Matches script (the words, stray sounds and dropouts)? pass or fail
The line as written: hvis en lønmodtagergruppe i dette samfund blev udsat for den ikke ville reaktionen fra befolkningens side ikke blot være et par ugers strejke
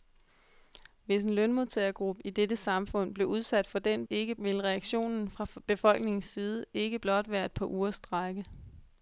pass